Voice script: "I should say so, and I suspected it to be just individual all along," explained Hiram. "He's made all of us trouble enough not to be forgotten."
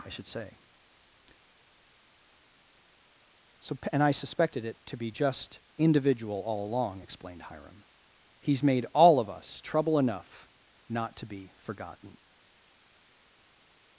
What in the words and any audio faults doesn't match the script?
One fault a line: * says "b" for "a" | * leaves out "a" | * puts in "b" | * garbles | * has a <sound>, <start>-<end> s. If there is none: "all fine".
all fine